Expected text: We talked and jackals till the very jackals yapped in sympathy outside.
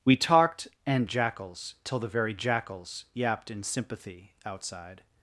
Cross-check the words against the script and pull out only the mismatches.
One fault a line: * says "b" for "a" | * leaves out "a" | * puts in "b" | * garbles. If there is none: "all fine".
all fine